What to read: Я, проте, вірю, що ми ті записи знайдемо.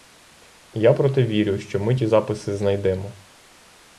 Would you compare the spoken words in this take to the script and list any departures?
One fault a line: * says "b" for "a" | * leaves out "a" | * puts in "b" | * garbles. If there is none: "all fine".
all fine